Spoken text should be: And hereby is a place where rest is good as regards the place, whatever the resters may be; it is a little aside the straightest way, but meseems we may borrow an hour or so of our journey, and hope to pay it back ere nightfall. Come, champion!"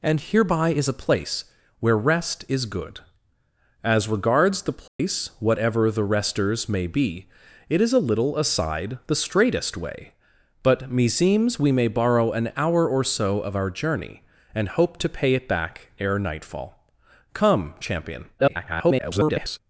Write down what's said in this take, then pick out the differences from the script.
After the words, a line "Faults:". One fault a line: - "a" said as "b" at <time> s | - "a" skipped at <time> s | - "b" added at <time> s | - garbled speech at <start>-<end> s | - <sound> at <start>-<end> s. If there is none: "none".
And hereby is a place where rest is good as regards the place, whatever the resters may be; it is a little aside the straightest way, but meseems we may borrow an hour or so of our journey, and hope to pay it back ere nightfall. Come, champion!" [garbled]
Faults:
- dropout at 4.9-5.0 s
- garbled speech at 18.4-19.6 s